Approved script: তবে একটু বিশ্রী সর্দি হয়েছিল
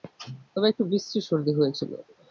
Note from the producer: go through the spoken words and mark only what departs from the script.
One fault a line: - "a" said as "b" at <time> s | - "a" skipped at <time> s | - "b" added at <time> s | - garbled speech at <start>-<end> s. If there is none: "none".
none